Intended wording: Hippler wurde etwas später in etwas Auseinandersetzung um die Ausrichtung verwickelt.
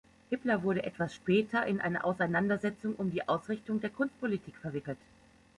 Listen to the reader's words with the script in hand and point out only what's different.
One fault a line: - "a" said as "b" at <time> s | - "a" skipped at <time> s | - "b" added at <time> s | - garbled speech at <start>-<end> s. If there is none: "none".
- "etwas" said as "eine" at 1.8 s
- "der Kunstpolitik" added at 3.8 s